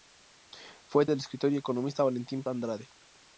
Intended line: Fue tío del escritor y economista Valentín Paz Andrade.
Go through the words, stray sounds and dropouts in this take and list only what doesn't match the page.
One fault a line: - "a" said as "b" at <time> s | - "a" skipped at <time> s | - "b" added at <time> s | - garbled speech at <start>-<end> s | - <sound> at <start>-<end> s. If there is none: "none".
- "tío" skipped at 1.1 s
- "Paz" skipped at 2.4 s